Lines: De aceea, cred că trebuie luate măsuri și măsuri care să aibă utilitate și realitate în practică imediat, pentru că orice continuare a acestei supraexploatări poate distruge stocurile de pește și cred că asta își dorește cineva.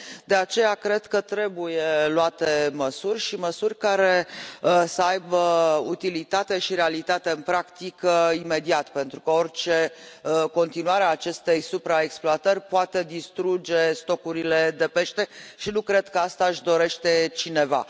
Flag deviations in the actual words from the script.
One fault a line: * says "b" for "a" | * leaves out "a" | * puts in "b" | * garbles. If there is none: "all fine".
* puts in "nu"